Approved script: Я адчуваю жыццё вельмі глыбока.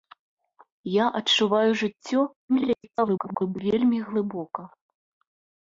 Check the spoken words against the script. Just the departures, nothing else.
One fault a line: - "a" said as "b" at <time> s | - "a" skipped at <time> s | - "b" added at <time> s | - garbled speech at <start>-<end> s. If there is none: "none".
- garbled speech at 2.5-3.6 s